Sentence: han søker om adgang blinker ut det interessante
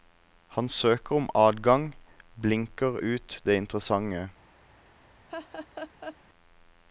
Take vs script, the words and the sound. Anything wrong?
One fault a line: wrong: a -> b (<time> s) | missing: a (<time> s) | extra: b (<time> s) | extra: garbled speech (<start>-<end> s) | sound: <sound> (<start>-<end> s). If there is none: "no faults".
sound: laugh (5.3-6.2 s)